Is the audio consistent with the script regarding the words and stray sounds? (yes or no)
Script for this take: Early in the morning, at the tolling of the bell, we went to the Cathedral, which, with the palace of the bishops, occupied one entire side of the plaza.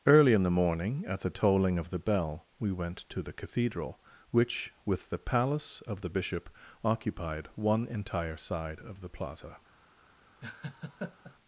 no